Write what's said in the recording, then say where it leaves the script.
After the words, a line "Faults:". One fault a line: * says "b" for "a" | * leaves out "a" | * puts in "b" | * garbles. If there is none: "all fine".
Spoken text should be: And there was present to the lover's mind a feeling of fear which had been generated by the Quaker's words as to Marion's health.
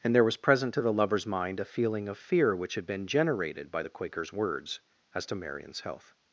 And there was present to the lover's mind a feeling of fear which had been generated by the Quaker's words as to Marion's health.
Faults:
all fine